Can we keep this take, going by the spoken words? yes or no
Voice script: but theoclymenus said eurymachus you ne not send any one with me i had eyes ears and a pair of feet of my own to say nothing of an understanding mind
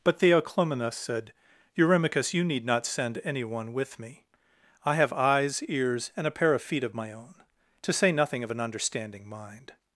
no